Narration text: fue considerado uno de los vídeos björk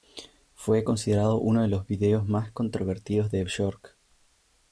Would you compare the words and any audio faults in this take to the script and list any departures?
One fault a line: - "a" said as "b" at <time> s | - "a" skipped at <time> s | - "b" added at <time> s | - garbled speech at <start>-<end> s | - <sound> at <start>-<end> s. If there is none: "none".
- "más controvertidos de" added at 2.3 s